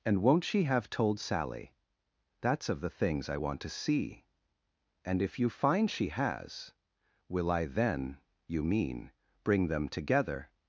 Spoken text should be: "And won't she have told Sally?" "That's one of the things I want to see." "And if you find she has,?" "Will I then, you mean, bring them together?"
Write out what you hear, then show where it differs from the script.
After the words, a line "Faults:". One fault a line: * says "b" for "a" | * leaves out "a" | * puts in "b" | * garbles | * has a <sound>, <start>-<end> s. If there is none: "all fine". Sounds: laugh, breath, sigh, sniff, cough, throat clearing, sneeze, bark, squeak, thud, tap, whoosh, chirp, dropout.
"And won't she have told Sally?" "That's of the things I want to see." "And if you find she has,?" "Will I then, you mean, bring them together?"
Faults:
* leaves out "one"